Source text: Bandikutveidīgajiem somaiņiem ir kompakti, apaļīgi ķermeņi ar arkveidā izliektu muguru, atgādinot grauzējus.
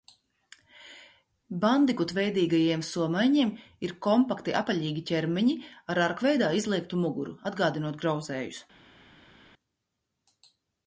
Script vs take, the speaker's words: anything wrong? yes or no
no